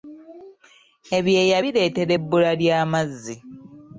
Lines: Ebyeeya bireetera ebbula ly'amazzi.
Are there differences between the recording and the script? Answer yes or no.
no